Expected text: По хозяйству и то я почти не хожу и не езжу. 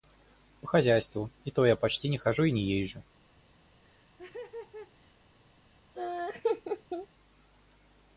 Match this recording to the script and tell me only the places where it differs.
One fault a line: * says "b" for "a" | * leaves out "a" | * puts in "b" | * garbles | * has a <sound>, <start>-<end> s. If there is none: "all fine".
* has a laugh, 3.8-5.1 s
* has a laugh, 6.0-7.1 s